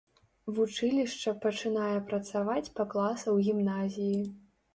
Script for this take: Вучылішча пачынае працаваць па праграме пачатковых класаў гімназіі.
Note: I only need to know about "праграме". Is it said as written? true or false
false